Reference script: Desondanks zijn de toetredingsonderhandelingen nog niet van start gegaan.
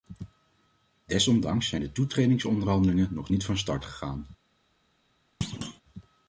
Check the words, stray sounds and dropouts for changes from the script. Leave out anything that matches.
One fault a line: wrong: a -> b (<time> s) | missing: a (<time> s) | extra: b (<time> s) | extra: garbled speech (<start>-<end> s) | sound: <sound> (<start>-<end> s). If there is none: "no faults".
sound: thud (5.4-5.8 s)